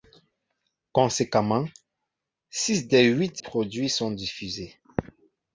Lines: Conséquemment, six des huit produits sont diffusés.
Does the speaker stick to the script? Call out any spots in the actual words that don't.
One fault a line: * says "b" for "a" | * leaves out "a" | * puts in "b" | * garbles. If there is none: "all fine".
all fine